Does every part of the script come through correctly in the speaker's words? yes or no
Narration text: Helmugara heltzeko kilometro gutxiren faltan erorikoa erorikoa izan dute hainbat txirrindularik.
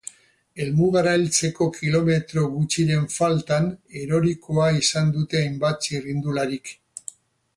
no